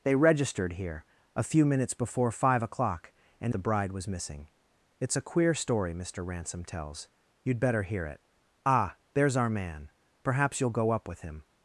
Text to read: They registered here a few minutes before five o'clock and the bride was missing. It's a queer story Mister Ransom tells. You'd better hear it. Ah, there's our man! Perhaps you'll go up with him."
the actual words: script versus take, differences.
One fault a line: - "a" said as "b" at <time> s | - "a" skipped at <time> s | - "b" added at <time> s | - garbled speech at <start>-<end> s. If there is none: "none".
none